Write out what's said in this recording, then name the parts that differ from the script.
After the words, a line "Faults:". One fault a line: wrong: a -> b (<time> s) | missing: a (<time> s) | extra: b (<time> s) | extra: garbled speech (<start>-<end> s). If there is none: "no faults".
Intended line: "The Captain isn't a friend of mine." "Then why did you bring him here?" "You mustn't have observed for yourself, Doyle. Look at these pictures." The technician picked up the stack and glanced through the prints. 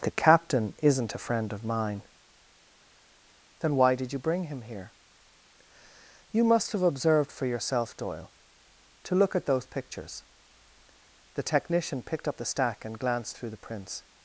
"The Captain isn't a friend of mine." "Then why did you bring him here?" "You must have observed for yourself, Doyle. To look at those pictures." The technician picked up the stack and glanced through the prints.
Faults:
wrong: mustn't -> must (6.4 s)
extra: To (9.0 s)
wrong: these -> those (9.4 s)